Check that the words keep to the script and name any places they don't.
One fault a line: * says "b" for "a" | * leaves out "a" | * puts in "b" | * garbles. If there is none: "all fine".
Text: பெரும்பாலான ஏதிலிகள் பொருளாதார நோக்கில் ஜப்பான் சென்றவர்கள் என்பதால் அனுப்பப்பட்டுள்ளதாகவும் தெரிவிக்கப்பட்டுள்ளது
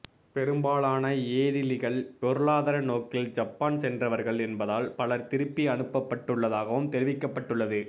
* puts in "பலர் திருப்பி"